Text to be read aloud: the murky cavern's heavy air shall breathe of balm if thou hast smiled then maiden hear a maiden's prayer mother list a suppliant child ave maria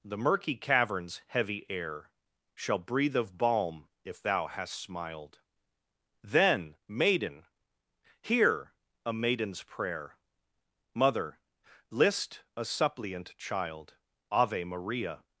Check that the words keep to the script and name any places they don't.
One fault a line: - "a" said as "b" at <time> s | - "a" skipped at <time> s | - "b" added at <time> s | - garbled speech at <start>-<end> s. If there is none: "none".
none